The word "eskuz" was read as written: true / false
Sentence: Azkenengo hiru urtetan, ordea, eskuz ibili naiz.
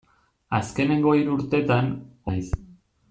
false